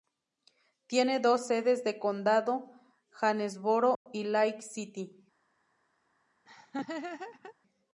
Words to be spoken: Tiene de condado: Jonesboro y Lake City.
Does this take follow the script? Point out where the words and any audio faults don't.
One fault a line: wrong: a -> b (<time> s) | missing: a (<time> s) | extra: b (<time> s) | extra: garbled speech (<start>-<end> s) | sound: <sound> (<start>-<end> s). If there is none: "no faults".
extra: dos sedes (1.2 s)
sound: dropout (4.0-4.1 s)
sound: laugh (6.4-7.5 s)